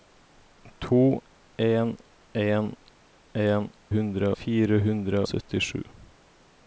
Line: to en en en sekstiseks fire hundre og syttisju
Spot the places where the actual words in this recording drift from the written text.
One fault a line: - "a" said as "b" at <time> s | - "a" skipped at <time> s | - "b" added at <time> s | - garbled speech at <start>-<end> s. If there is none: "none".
- "sekstiseks" said as "hundre" at 3.9 s
- "og" skipped at 5.2 s